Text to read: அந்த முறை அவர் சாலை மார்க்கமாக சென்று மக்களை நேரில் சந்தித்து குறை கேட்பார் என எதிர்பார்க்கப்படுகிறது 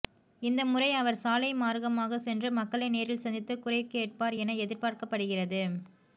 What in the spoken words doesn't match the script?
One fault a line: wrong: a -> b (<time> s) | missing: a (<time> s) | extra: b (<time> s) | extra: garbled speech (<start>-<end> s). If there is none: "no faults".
wrong: அந்த -> இந்த (0.4 s)